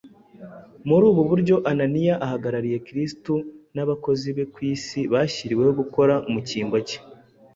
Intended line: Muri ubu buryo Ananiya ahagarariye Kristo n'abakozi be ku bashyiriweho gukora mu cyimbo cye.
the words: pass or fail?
fail